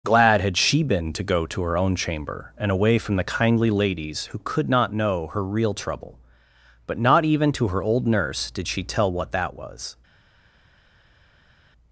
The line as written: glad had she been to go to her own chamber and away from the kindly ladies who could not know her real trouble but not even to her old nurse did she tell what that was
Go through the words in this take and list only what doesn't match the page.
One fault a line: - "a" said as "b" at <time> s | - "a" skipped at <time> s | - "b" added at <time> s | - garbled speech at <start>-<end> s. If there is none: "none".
none